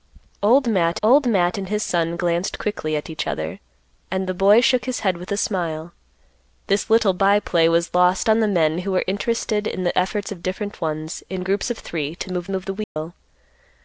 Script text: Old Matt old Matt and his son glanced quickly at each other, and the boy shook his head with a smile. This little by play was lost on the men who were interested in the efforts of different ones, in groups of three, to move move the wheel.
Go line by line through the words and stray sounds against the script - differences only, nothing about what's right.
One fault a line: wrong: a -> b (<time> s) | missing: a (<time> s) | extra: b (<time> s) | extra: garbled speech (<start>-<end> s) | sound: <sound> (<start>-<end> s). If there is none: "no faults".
sound: dropout (12.8-13.0 s)